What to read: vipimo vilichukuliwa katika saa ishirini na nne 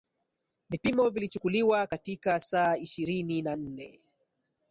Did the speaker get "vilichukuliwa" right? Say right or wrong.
right